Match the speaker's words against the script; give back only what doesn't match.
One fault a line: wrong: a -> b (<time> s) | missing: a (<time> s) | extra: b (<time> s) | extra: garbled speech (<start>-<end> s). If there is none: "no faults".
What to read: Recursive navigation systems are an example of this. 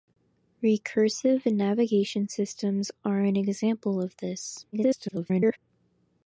extra: garbled speech (4.7-5.6 s)